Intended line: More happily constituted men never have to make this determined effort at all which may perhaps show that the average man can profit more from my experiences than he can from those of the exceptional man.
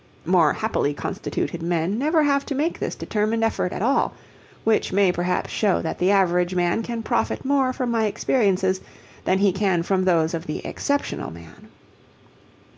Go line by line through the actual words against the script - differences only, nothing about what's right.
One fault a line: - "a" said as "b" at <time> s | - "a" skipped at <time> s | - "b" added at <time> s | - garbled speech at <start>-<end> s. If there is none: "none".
none